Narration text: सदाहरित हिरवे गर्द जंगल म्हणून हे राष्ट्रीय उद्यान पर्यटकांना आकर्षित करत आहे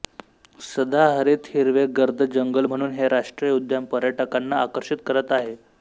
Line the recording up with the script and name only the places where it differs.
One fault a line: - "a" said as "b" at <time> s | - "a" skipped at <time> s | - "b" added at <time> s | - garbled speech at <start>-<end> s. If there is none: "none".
none